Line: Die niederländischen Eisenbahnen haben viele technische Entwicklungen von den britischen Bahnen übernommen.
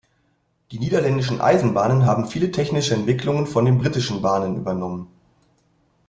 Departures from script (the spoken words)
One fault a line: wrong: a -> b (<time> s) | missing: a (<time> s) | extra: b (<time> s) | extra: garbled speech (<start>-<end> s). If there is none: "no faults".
no faults